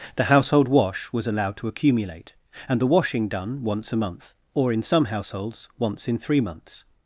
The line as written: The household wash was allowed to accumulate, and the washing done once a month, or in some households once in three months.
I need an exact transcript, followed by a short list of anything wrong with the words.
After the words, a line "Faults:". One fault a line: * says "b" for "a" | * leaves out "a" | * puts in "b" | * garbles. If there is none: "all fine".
The household wash was allowed to accumulate, and the washing done once a month, or in some households once in three months.
Faults:
all fine